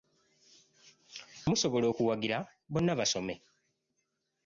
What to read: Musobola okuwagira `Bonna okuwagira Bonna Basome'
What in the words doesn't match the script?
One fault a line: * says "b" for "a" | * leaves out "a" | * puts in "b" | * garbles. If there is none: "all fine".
* leaves out "okuwagira Bonna"